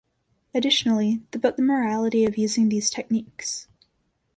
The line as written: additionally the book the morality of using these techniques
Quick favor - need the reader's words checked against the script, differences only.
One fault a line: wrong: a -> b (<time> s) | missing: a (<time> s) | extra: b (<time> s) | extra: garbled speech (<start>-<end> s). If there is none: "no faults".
no faults